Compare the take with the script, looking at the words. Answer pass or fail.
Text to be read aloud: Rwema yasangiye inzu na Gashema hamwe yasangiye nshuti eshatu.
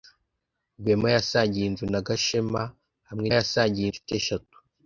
pass